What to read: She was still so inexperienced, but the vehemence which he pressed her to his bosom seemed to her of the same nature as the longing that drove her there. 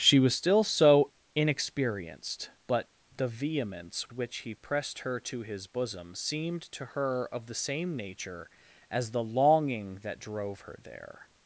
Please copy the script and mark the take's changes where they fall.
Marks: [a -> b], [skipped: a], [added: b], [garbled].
She was still so inexperienced, but the vehemence which he pressed her to his bosom seemed to her of the same nature as the longing that drove her there.